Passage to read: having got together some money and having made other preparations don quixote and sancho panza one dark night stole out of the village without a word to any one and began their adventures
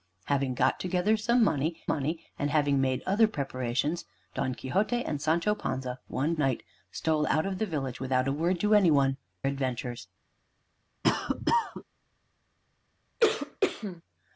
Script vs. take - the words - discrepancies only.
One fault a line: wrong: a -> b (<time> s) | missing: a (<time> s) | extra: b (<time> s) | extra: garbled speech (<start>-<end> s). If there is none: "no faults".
extra: money (1.9 s)
missing: dark (6.3 s)
missing: and began their (9.2 s)